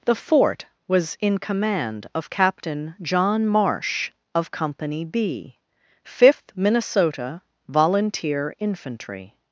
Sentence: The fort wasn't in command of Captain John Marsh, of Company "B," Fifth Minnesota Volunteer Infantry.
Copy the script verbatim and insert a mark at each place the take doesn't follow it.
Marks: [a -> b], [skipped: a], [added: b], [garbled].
The fort [wasn't -> was] in command of Captain John Marsh, of Company "B," Fifth Minnesota Volunteer Infantry.